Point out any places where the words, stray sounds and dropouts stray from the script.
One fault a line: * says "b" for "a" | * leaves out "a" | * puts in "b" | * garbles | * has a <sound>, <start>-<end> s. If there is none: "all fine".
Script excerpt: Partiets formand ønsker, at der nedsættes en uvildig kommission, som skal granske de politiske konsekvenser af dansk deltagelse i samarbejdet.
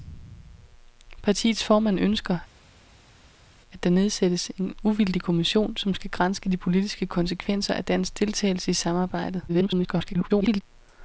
* garbles